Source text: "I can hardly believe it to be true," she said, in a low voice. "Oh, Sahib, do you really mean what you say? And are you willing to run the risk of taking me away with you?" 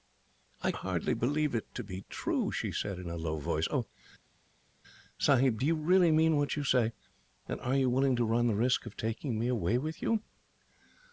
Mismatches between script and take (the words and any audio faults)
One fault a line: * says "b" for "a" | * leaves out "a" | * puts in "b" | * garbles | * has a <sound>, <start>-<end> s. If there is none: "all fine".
* leaves out "can"